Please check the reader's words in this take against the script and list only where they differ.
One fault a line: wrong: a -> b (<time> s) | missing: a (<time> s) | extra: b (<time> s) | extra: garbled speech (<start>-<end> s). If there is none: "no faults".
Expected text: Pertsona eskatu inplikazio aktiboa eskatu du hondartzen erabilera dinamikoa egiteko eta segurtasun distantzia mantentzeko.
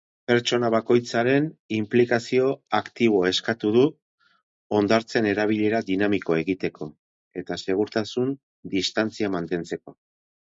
wrong: eskatu -> bakoitzaren (0.7 s)